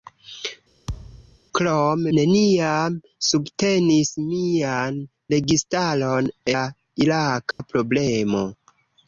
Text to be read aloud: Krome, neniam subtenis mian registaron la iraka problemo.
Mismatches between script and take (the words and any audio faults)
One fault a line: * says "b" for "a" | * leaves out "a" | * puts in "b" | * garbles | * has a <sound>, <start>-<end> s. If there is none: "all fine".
* has a thud, 0.9-1.4 s
* has a dropout, 7.5-7.6 s